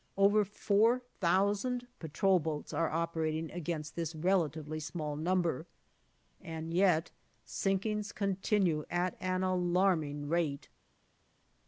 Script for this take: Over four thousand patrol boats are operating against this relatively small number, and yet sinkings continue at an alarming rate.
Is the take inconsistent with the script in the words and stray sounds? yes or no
no